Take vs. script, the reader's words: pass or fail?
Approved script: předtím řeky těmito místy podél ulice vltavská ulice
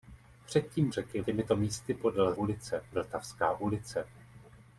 pass